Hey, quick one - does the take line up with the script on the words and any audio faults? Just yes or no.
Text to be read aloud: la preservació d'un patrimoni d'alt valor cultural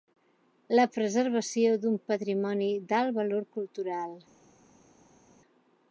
yes